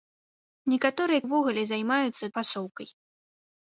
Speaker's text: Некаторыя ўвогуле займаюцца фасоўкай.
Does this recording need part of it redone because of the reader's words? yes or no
no